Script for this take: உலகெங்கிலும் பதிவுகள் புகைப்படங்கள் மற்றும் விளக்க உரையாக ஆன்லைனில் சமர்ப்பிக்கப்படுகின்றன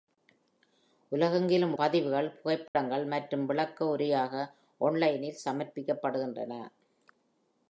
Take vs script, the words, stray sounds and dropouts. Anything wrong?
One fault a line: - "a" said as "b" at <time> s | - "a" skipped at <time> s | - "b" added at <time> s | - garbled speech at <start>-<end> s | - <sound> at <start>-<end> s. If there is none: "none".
- dropout at 2.7-2.8 s